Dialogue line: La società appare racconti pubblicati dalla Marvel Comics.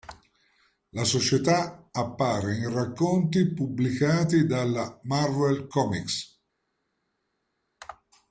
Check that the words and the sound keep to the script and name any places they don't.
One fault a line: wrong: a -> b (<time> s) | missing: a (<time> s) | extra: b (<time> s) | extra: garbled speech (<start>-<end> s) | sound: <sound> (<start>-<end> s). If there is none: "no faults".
extra: in (2.5 s)